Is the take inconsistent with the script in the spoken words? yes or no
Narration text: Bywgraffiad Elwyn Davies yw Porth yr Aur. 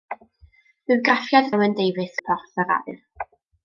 no